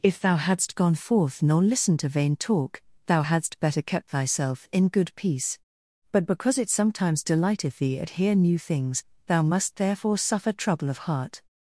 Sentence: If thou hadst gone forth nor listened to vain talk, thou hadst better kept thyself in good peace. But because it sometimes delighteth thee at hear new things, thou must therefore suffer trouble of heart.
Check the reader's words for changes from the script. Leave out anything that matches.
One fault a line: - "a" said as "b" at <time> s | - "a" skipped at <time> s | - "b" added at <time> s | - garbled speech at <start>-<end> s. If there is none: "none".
none